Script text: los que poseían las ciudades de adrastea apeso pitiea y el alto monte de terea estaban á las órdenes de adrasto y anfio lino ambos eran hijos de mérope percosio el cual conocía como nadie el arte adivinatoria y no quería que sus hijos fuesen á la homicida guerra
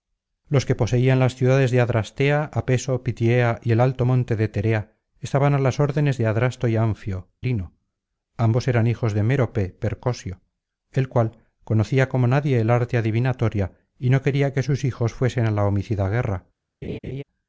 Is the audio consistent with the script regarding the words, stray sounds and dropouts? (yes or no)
no